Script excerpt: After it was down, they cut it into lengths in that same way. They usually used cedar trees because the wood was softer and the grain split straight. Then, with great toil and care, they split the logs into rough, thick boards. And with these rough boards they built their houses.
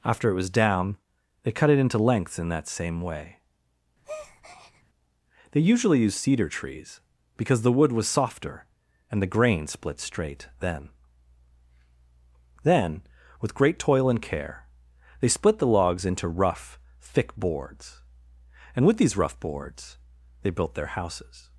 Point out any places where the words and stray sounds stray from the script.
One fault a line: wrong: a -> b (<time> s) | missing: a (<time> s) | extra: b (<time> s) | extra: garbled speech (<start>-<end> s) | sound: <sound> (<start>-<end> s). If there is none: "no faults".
sound: breath (4.0-4.8 s)
extra: Then (12.6 s)